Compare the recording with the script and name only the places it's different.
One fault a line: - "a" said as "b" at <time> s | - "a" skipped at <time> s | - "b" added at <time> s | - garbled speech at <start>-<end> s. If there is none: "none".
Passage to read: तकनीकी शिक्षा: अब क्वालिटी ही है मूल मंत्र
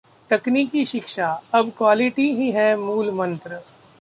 none